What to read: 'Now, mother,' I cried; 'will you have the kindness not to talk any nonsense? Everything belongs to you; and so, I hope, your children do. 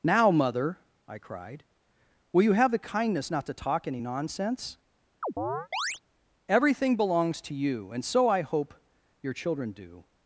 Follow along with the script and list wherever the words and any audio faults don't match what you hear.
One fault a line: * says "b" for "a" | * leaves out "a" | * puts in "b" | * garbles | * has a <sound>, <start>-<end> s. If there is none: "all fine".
* has a chirp, 5.2-6.0 s